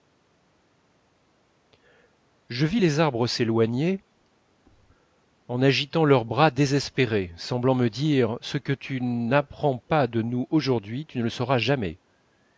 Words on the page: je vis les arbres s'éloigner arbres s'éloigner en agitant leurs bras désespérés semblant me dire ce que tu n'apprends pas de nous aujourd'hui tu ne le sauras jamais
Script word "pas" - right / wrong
right